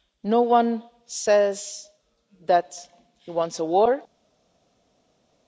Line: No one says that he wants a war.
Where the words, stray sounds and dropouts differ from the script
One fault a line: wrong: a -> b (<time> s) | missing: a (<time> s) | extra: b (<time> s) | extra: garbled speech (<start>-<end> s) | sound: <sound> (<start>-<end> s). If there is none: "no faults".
no faults